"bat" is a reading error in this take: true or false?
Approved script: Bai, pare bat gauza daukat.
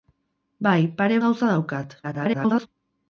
true